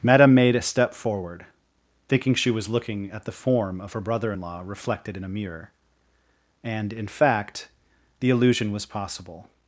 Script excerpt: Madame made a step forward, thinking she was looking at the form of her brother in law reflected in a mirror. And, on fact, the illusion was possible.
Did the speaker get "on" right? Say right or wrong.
wrong